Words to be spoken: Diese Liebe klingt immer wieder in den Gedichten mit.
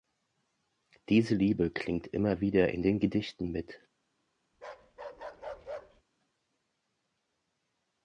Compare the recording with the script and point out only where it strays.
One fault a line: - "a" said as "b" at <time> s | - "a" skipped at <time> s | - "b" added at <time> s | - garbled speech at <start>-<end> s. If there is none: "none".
none